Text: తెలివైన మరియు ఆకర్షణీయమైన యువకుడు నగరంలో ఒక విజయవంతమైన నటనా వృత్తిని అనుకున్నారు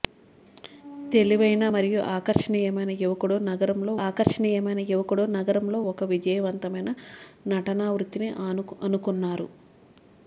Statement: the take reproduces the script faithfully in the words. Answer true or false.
false